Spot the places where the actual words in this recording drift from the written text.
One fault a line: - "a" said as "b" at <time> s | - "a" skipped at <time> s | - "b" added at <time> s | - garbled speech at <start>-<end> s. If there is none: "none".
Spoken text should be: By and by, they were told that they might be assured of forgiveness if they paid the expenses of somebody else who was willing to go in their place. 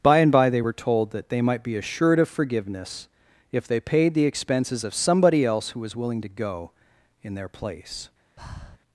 none